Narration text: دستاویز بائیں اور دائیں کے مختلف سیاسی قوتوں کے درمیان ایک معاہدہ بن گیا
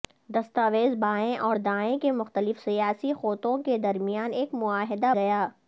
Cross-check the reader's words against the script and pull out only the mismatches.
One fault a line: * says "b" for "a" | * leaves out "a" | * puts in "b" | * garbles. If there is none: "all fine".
* leaves out "بن"